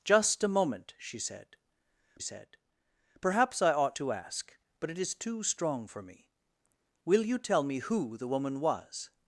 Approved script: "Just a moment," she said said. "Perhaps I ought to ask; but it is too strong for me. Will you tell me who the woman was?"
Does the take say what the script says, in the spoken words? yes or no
yes